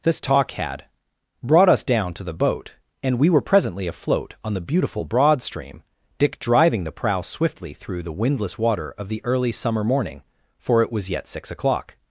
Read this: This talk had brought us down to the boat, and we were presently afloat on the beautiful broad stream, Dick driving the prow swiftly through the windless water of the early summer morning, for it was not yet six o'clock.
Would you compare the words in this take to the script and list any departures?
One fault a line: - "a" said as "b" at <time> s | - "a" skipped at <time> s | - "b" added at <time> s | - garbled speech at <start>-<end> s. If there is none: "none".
- "not" skipped at 11.1 s